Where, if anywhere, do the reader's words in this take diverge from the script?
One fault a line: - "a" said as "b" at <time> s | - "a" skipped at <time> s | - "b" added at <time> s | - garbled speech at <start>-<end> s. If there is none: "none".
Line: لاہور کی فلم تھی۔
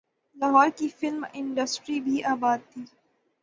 - "انڈسٹری بھی آباد" added at 1.3 s